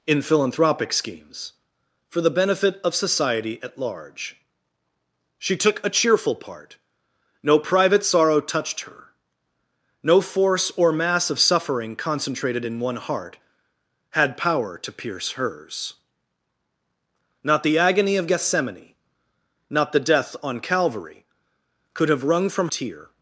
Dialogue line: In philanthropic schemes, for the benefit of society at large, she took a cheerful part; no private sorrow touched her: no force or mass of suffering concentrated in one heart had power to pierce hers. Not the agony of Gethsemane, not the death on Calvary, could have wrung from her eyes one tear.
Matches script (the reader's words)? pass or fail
fail